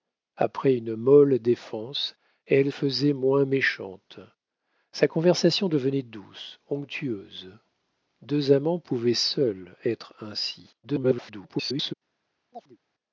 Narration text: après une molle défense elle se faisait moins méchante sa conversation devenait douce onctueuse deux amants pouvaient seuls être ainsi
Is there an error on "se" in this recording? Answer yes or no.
yes